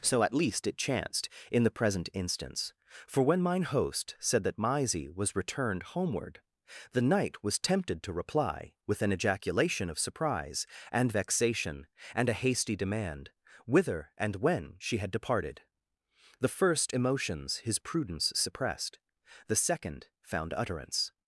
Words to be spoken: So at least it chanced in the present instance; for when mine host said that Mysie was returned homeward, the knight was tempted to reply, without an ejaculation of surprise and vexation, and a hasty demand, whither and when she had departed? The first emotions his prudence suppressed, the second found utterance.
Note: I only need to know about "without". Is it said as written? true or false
false